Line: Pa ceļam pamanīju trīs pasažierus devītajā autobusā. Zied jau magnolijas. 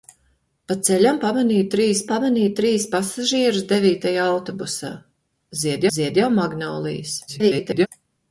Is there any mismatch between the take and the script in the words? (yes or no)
yes